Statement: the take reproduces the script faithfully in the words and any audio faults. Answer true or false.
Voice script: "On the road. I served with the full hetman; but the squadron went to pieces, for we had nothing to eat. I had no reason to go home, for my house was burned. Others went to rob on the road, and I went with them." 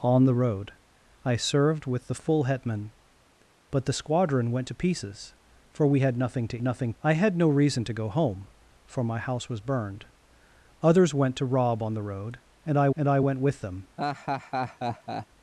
false